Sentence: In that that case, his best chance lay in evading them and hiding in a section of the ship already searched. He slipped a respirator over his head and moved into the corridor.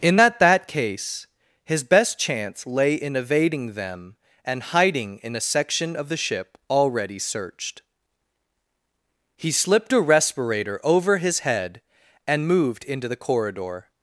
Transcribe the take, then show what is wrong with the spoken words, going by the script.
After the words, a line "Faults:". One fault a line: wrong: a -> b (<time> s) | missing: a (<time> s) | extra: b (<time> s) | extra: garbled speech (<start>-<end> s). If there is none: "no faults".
In that that case, his best chance lay in evading them and hiding in a section of the ship already searched. He slipped a respirator over his head and moved into the corridor.
Faults:
no faults